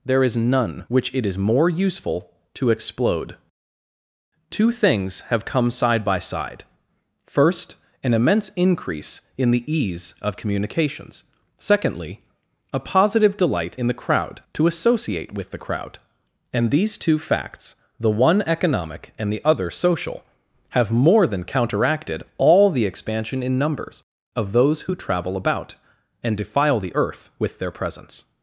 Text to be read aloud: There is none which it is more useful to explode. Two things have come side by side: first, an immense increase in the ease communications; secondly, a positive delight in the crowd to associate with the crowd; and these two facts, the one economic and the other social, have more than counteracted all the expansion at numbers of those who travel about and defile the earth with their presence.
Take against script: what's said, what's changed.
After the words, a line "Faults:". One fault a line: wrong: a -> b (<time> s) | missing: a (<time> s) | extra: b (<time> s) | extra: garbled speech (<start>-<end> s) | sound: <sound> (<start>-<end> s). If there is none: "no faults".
There is none which it is more useful to explode. Two things have come side by side: first, an immense increase in the ease of communications; secondly, a positive delight in the crowd to associate with the crowd; and these two facts, the one economic and the other social, have more than counteracted all the expansion in numbers of those who travel about and defile the earth with their presence.
Faults:
extra: of (10.2 s)
wrong: at -> in (23.4 s)